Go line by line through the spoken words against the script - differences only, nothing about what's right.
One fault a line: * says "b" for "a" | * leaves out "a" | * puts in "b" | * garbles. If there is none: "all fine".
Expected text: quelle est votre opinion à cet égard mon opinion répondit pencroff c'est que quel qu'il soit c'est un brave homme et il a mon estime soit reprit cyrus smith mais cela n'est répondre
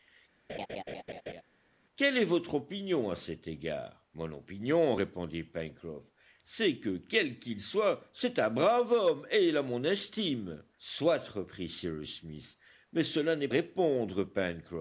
all fine